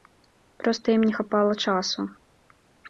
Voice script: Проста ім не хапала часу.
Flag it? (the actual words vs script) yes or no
no